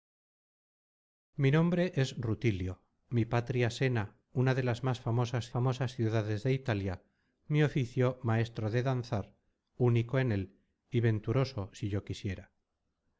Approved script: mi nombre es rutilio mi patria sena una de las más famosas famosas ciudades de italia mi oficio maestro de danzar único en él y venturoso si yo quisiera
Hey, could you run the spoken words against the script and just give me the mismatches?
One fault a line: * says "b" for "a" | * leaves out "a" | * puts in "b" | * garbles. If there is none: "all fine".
all fine